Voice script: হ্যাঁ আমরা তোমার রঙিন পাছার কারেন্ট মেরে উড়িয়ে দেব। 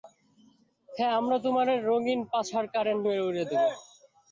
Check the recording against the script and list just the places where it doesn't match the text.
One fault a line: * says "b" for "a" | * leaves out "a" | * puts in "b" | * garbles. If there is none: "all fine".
all fine